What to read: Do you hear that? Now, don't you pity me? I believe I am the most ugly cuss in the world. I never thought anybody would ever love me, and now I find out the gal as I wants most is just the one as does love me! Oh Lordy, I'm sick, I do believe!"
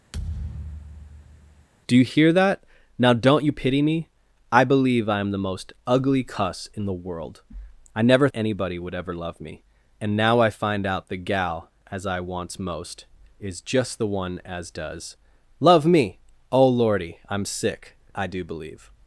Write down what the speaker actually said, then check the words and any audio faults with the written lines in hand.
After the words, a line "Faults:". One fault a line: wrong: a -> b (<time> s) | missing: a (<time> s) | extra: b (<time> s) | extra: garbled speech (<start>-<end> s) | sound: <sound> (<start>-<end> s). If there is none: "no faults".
Do you hear that? Now, don't you pity me? I believe I am the most ugly cuss in the world. I never anybody would ever love me, and now I find out the gal as I wants most is just the one as does love me! Oh Lordy, I'm sick, I do believe!"
Faults:
sound: thud (0.1-1.7 s)
missing: thought (8.3 s)